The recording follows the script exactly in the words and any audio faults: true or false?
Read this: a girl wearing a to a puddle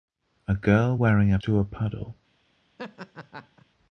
false